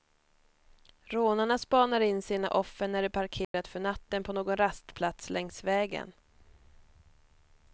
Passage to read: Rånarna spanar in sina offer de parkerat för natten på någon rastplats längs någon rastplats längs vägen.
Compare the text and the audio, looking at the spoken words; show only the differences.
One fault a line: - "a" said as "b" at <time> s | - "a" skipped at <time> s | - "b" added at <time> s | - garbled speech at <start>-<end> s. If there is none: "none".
- "när" added at 2.9 s
- "någon rastplats längs" skipped at 5.6 s